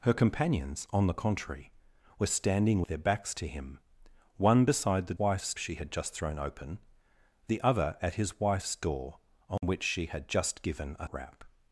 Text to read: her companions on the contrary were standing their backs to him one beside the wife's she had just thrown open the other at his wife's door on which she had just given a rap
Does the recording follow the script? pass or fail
pass